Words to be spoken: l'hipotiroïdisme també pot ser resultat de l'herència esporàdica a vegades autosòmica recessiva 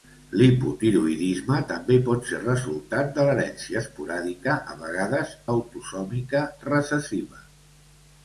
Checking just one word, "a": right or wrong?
right